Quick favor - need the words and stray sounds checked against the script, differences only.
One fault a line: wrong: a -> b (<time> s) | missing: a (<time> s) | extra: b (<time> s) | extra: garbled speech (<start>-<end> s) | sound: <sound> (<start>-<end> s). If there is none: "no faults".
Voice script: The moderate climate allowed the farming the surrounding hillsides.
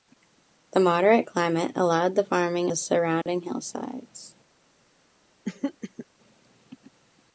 sound: dropout (3.2-3.3 s)
sound: throat clearing (5.4-6.1 s)